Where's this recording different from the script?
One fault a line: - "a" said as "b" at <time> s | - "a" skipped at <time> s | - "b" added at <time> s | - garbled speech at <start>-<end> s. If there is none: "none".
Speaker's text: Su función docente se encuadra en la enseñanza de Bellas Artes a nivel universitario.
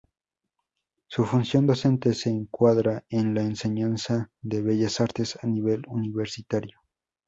none